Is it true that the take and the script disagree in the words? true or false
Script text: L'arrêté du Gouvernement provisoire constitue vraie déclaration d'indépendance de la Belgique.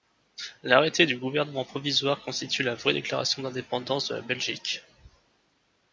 true